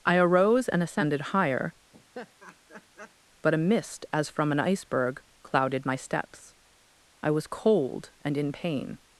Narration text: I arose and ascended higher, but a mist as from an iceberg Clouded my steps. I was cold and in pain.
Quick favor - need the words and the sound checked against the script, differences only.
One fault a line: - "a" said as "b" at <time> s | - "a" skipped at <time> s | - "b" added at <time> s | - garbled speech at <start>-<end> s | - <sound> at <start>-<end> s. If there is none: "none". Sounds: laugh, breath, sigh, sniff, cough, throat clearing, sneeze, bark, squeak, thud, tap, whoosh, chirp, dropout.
- laugh at 1.9-3.2 s